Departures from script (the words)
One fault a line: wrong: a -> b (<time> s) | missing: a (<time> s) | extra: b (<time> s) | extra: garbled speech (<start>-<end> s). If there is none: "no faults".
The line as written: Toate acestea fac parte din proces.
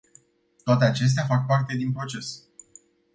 no faults